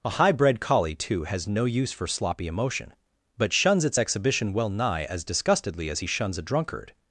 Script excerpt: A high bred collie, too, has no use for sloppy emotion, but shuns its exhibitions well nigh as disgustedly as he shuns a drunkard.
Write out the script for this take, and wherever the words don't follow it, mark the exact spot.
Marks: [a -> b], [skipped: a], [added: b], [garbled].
A high bred collie, too, has no use for sloppy emotion, but shuns its [exhibitions -> exhibition] well nigh as disgustedly as he shuns a drunkard.